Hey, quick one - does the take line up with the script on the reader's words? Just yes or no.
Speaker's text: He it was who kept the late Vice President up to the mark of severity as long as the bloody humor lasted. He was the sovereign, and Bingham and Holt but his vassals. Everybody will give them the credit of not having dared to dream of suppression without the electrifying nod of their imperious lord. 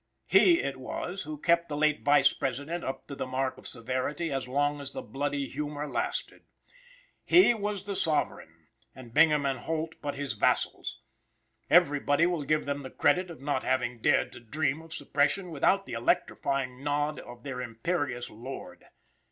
yes